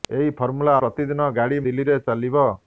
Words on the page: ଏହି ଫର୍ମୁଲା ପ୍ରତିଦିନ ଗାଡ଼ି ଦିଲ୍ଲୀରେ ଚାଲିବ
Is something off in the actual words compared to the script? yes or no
no